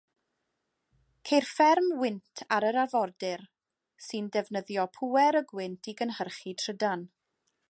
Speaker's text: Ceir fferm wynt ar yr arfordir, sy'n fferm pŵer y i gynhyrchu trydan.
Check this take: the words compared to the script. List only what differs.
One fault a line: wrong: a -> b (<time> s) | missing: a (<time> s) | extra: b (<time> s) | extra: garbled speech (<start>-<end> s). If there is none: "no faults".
wrong: fferm -> defnyddio (4.4 s)
extra: gwynt (5.5 s)